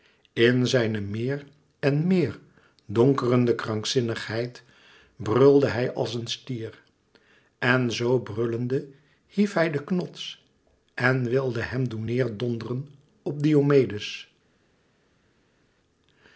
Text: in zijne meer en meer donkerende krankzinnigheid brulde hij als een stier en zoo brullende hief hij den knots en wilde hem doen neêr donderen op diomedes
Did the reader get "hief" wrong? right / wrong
right